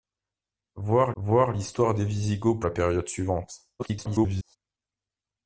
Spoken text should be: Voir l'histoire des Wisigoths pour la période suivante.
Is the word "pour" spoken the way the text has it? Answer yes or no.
no